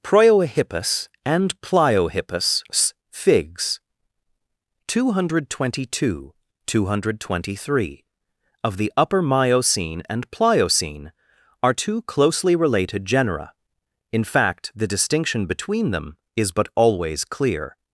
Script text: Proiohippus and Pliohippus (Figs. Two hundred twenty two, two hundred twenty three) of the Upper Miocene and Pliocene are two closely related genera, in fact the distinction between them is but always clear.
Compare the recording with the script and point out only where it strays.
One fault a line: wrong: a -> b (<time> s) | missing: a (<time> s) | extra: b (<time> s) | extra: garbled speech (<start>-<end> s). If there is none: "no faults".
no faults